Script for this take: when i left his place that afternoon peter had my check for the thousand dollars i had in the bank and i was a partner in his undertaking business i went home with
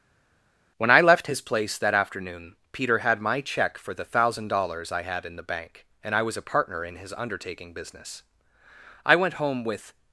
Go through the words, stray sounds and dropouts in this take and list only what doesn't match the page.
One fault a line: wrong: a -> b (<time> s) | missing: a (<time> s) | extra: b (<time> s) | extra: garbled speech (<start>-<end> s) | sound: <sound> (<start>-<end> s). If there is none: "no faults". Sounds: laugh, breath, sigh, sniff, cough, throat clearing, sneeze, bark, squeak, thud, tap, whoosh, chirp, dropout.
no faults